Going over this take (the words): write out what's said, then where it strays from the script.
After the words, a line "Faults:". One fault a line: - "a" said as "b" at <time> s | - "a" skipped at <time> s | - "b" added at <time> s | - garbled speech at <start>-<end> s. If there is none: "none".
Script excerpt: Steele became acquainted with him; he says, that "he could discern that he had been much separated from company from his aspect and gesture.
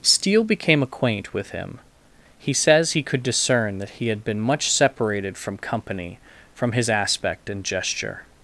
Steele became acquaint with him; he says, "he could discern that he had been much separated from company from his aspect and gesture.
Faults:
- "acquainted" said as "acquaint" at 0.8 s
- "that" skipped at 2.9 s